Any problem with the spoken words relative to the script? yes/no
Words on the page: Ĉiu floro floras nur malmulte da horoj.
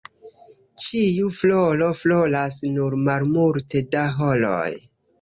no